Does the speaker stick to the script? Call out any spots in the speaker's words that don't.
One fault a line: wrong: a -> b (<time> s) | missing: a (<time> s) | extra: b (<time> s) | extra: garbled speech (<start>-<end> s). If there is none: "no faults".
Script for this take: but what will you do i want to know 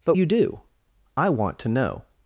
missing: what will (0.1 s)